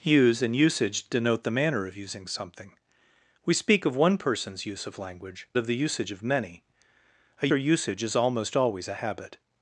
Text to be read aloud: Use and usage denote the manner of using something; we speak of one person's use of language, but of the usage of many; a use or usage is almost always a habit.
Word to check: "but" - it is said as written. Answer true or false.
false